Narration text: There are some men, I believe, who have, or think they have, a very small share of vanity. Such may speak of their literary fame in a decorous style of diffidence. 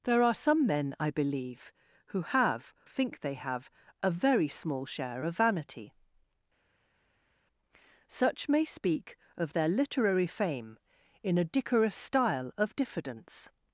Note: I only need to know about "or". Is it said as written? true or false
false